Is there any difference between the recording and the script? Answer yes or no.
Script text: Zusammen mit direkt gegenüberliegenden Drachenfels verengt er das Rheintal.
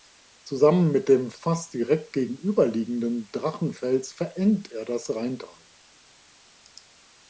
yes